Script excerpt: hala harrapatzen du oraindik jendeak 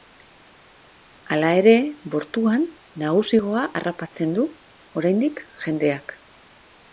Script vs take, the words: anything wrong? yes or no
yes